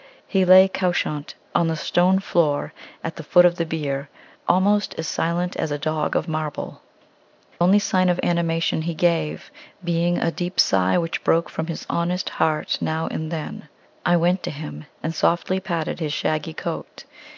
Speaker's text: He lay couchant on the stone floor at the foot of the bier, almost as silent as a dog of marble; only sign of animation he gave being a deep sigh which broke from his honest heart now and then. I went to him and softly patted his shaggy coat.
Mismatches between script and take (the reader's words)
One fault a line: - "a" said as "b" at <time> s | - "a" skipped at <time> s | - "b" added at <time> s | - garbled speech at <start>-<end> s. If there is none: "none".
none